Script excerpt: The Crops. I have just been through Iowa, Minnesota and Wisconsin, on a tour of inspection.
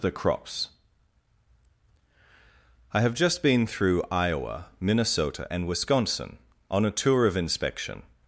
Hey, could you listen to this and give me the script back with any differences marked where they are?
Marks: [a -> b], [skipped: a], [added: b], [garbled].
The Crops. I have just been through Iowa, Minnesota and Wisconsin, on a tour of inspection.